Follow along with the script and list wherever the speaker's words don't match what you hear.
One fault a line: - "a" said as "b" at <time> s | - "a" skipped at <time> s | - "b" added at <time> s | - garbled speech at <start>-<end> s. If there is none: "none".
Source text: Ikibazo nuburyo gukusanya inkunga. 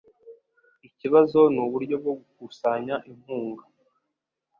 - "bwo" added at 2.0 s